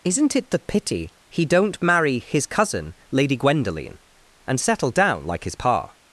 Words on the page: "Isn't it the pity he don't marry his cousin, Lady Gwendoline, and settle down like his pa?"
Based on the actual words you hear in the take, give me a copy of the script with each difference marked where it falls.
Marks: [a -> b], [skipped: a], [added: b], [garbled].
"Isn't it the pity he don't marry his cousin, Lady Gwendoline, and settle down like his pa?"